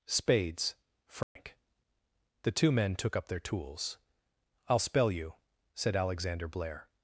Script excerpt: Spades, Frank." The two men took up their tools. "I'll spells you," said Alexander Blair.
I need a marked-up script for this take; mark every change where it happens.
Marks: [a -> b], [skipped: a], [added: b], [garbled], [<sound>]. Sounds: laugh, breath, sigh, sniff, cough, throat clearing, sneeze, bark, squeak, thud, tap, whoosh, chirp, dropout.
Spades, Frank." [dropout] The two men took up their tools. "I'll [spells -> spell] you," said Alexander Blair.